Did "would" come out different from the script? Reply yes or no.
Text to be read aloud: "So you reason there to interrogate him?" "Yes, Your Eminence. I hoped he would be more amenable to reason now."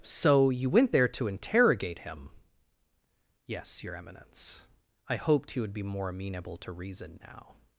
no